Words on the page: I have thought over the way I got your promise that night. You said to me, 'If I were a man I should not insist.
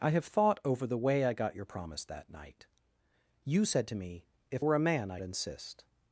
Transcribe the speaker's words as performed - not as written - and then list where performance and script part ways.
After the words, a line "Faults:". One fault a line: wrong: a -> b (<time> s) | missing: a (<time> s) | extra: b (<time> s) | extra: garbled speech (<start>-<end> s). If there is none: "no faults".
I have thought over the way I got your promise that night. You said to me, 'If were a man I insist.
Faults:
missing: I (4.7 s)
missing: should not (5.2 s)